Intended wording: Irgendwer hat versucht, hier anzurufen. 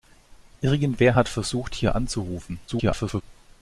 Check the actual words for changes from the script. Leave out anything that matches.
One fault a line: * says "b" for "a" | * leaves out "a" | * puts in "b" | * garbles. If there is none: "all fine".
* garbles